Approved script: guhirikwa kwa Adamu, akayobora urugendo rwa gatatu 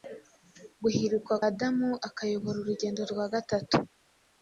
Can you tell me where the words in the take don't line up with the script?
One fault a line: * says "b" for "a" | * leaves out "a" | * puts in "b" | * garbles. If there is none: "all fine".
* leaves out "kwa"